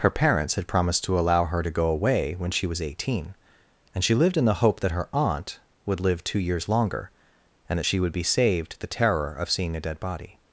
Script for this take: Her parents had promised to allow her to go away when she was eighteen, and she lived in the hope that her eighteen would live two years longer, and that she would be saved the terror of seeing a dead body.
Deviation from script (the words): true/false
true